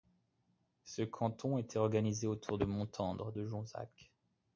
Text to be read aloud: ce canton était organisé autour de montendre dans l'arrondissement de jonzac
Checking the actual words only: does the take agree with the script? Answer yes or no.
no